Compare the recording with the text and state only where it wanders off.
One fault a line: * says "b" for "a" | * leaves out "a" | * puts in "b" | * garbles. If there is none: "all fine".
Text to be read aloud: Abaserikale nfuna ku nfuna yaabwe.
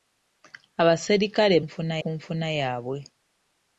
all fine